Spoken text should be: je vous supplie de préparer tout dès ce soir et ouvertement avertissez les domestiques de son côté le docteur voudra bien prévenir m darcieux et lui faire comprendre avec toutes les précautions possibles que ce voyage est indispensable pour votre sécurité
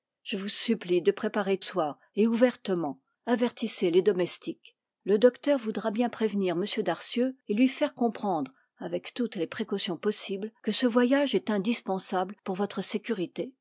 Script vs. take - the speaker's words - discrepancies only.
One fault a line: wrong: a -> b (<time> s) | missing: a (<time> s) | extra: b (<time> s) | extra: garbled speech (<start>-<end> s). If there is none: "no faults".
missing: tout dès ce (1.6 s)
missing: de son côté (4.8 s)